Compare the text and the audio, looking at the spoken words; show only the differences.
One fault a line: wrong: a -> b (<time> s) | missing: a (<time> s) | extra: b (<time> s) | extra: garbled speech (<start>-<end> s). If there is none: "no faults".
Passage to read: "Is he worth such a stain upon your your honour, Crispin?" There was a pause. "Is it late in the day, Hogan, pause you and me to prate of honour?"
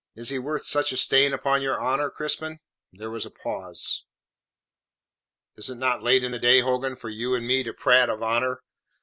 missing: your (1.8 s)
extra: not (5.8 s)
wrong: pause -> for (7.0 s)